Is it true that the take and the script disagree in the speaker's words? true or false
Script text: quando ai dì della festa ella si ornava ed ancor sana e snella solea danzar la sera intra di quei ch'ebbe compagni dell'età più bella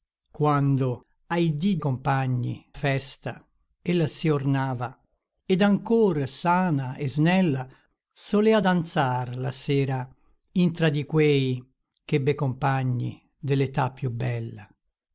true